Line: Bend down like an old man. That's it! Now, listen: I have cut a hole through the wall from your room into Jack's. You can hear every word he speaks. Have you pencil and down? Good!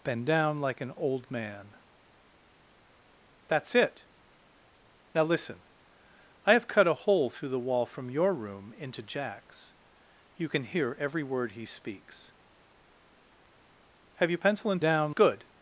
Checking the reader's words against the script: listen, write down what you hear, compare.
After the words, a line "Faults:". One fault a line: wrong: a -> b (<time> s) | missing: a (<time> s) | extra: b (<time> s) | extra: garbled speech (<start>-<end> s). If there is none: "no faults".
Bend down like an old man. That's it! Now, listen: I have cut a hole through the wall from your room into Jack's. You can hear every word he speaks. Have you pencil and down? Good!
Faults:
no faults